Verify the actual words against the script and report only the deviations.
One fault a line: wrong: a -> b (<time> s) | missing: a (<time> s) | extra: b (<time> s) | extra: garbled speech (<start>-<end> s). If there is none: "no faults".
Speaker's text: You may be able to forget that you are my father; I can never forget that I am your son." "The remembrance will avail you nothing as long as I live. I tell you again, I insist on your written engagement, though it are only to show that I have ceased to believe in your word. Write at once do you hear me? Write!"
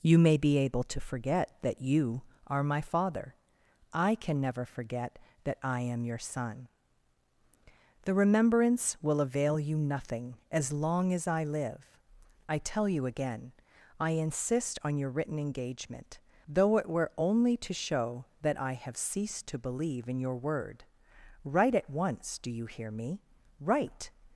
wrong: are -> were (16.9 s)